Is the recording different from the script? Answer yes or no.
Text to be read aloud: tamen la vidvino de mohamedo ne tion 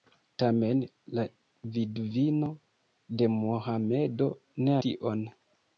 no